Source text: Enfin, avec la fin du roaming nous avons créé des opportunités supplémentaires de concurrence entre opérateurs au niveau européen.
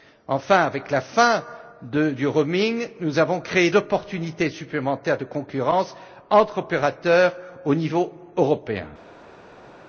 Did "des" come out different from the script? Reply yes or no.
yes